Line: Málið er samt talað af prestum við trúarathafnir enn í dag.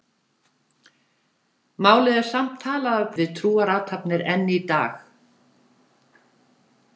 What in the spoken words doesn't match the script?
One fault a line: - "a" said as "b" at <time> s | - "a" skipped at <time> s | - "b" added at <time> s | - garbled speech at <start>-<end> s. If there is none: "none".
- "prestum" skipped at 3.1 s